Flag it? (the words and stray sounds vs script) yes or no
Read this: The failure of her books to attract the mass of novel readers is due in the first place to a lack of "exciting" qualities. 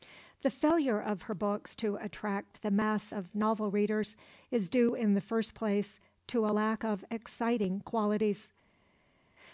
no